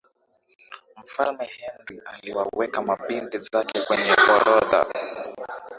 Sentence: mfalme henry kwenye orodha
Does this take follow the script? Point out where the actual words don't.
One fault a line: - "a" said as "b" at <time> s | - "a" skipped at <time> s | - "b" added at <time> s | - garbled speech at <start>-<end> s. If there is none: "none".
- "aliwaweka mabinti zake" added at 2.0 s